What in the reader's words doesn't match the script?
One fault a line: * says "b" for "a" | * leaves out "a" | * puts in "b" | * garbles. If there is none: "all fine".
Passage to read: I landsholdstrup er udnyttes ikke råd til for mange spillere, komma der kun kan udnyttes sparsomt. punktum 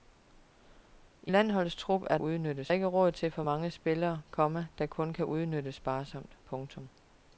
all fine